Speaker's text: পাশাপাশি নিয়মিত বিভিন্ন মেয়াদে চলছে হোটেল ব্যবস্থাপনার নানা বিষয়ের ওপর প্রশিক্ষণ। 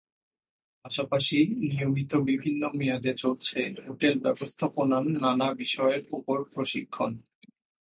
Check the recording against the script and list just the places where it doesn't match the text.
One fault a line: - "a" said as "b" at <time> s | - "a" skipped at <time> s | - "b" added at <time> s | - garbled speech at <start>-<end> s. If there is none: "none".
none